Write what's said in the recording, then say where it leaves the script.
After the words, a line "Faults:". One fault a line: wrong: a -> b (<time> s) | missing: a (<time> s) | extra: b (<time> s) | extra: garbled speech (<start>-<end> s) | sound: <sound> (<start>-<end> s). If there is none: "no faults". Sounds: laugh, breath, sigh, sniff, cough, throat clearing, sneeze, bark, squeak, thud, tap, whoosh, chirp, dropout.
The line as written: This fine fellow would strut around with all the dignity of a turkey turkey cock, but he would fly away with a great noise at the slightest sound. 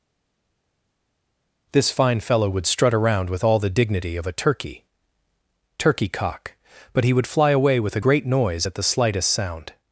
This fine fellow would strut around with all the dignity of a turkey turkey cock, but he would fly away with a great noise at the slightest sound.
Faults:
no faults